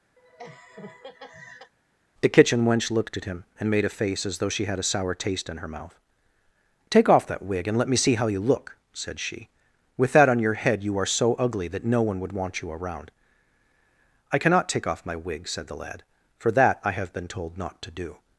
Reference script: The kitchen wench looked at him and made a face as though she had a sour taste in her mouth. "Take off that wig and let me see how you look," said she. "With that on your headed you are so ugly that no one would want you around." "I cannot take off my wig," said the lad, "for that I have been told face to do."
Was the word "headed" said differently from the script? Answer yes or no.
yes